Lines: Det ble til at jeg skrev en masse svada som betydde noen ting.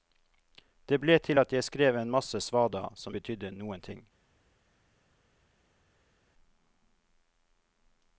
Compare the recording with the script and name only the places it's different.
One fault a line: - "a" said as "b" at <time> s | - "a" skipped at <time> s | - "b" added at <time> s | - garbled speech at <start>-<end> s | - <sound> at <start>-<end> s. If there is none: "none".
none